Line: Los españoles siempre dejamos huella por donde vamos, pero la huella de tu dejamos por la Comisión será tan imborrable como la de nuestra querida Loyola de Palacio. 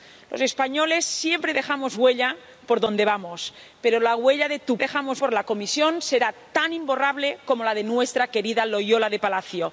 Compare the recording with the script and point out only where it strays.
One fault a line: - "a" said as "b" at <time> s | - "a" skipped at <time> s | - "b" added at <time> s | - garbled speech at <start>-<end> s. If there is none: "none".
none